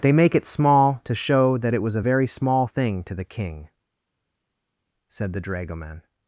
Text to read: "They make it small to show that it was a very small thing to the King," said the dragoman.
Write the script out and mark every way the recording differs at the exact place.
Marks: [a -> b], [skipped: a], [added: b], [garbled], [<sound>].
"They make it small to show that it was a very small thing to the King," said the dragoman.